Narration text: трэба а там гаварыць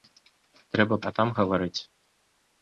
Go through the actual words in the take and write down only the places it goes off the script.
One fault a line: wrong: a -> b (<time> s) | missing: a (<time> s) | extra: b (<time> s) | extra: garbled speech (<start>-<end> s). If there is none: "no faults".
no faults